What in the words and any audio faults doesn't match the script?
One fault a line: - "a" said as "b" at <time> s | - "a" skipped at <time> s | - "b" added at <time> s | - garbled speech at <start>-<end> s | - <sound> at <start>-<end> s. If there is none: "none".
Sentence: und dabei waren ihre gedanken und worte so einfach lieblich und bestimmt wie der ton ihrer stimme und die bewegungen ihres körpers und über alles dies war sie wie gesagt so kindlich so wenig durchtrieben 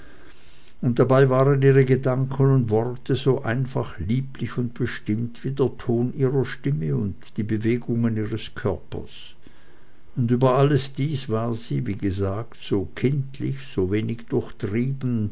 none